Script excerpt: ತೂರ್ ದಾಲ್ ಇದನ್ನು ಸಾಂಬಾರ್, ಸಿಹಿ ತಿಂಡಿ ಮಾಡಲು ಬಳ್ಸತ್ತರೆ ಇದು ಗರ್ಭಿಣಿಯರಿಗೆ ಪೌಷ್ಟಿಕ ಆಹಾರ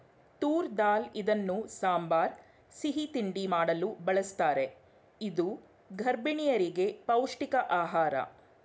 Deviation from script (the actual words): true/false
false